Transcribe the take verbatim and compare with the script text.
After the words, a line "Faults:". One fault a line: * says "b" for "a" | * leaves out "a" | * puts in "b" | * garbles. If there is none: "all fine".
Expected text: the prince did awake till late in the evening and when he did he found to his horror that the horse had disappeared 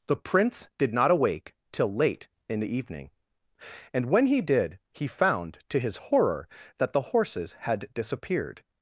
the prince did not awake till late in the evening and when he did he found to his horror that the horses had disappeared
Faults:
* puts in "not"
* says "horses" for "horse"